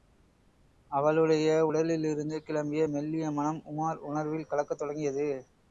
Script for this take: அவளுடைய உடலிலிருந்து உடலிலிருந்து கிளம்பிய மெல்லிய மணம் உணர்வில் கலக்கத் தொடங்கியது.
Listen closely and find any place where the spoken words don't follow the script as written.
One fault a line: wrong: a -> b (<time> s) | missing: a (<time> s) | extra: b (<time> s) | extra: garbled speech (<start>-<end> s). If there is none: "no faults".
missing: உடலிலிருந்து (2.4 s)
extra: உமார் (3.6 s)